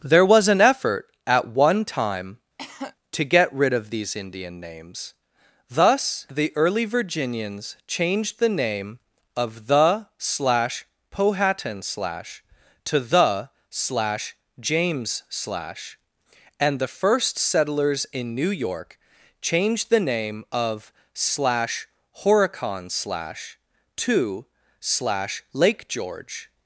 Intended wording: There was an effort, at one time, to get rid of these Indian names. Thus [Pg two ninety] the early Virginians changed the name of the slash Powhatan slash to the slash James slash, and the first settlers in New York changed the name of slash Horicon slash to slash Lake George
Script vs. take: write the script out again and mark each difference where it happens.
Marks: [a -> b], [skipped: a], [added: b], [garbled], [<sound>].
There was an effort, at one time, [cough] to get rid of these Indian names. Thus [skipped: [Pg two ninety]] the early Virginians changed the name of the slash Powhatan slash to the slash James slash, and the first settlers in New York changed the name of slash Horicon slash to slash Lake George